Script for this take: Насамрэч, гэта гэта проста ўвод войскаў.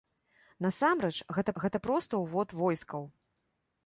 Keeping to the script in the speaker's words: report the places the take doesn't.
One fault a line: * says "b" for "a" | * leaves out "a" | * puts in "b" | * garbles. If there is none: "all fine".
all fine